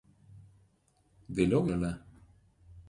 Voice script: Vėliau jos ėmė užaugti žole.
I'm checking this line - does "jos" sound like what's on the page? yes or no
no